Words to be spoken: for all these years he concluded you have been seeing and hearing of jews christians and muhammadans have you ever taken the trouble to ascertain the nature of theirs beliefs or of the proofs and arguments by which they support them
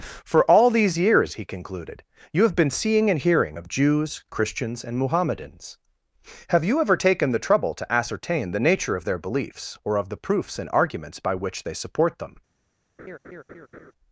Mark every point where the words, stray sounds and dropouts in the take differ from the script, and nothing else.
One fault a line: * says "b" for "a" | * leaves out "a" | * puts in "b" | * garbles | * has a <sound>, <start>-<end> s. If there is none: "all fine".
* says "their" for "theirs"
* has a laugh, 13.0-13.9 s